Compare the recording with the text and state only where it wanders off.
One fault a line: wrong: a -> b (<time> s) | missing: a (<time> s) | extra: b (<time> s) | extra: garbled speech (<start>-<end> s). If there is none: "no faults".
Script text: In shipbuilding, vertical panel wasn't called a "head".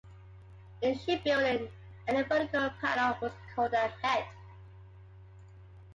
extra: any (2.1 s)
wrong: wasn't -> was (3.2 s)